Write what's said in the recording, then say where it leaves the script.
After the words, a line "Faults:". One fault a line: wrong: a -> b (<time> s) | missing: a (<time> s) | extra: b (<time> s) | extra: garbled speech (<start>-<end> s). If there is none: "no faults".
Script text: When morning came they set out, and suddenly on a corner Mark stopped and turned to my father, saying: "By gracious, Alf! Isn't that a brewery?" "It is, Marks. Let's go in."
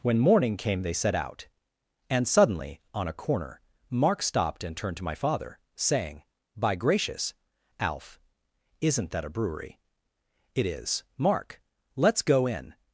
When morning came they set out, and suddenly on a corner Mark stopped and turned to my father, saying: "By gracious, Alf! Isn't that a brewery?" "It is, Mark. Let's go in."
Faults:
wrong: Marks -> Mark (11.2 s)